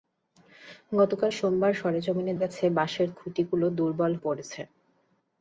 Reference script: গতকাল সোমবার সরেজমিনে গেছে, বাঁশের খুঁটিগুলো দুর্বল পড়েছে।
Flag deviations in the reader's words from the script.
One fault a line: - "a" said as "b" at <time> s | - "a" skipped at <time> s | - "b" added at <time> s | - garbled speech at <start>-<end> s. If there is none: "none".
none